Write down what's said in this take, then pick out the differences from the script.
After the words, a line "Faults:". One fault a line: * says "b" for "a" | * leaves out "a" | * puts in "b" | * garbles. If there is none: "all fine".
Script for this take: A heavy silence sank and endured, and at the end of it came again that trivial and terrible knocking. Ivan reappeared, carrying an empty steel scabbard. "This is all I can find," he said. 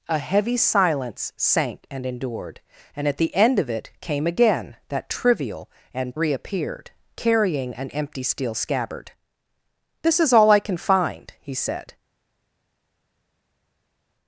A heavy silence sank and endured, and at the end of it came again that trivial and reappeared, carrying an empty steel scabbard. "This is all I can find," he said.
Faults:
* leaves out "terrible knocking Ivan"